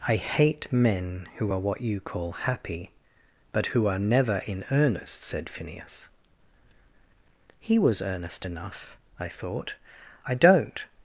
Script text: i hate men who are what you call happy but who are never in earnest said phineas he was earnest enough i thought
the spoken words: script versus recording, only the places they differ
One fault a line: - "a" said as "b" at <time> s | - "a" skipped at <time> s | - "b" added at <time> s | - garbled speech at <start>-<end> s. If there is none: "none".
- "i don't" added at 10.3 s